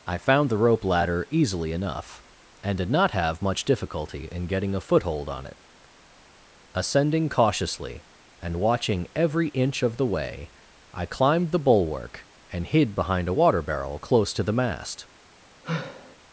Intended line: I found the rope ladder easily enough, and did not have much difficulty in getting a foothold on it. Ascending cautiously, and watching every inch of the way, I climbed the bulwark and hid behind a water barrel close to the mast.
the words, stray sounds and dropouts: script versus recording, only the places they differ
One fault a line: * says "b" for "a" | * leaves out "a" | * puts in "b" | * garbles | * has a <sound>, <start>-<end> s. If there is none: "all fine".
* has a sigh, 15.6-16.2 s